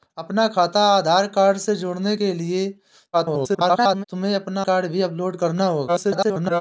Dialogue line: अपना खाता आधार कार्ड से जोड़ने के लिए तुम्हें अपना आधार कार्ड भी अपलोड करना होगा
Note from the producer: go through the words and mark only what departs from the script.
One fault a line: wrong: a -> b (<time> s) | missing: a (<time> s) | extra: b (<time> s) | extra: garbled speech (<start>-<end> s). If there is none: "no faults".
extra: garbled speech (3.1-4.0 s)
missing: आधार (4.6 s)
extra: garbled speech (5.9-6.6 s)